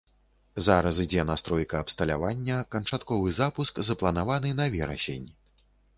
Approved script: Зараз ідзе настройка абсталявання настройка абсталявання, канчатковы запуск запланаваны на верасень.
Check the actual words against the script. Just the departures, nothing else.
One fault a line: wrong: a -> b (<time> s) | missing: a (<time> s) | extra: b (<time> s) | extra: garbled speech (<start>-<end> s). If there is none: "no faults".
missing: настройка абсталявання (2.6 s)